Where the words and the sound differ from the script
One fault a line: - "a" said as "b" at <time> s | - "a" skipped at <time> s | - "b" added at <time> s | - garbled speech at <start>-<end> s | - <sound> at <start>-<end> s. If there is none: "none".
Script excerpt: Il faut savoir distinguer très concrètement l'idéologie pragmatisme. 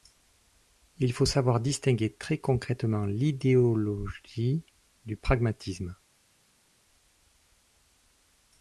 - "du" added at 5.0 s